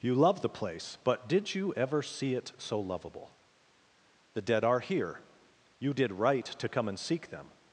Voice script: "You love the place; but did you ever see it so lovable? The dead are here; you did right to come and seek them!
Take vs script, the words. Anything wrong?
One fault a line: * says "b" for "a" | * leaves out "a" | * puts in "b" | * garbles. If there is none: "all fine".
all fine